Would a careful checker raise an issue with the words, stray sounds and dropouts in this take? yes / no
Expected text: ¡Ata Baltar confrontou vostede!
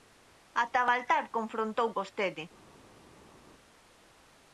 no